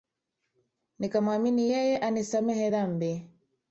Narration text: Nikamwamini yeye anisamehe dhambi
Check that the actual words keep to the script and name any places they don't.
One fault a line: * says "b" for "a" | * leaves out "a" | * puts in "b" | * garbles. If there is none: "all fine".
all fine